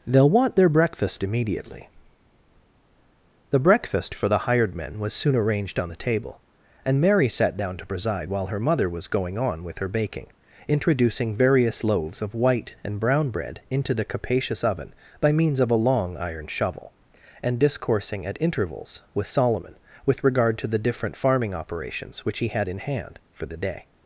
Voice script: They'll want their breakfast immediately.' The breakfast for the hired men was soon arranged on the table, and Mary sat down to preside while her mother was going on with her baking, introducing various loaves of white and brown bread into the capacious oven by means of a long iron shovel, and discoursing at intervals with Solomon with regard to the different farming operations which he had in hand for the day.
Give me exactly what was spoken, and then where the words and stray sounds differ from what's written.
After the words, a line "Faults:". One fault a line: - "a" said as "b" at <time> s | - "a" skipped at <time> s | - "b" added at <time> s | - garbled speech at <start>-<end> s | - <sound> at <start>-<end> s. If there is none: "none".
They'll want their breakfast immediately.' The breakfast for the hired men was soon arranged on the table, and Mary sat down to preside while her mother was going on with her baking, introducing various loaves of white and brown bread into the capacious oven by means of a long iron shovel, and discoursing at intervals with Solomon with regard to the different farming operations which he had in hand for the day.
Faults:
none